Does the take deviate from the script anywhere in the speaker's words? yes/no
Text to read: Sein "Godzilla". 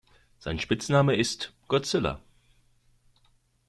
yes